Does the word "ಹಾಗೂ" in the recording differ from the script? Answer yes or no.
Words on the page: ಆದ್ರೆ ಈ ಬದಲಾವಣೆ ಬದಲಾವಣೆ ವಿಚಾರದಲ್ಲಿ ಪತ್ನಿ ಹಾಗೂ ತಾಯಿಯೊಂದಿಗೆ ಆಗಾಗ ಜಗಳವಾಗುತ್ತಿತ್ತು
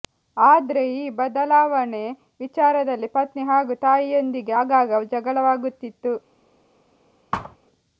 no